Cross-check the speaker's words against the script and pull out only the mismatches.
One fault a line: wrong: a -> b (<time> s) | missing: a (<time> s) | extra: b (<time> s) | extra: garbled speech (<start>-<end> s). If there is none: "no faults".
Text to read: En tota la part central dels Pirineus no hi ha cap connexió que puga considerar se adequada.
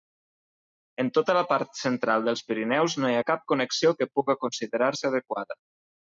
no faults